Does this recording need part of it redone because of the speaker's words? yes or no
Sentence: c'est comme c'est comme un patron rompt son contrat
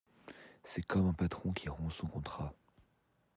yes